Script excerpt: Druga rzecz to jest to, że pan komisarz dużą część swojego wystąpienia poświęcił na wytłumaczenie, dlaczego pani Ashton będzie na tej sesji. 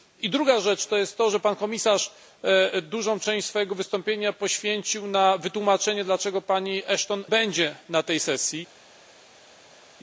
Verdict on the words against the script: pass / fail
pass